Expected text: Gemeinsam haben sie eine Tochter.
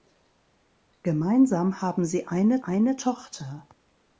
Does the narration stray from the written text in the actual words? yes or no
yes